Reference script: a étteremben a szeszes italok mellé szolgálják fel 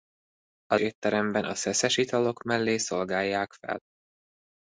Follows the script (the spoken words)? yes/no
yes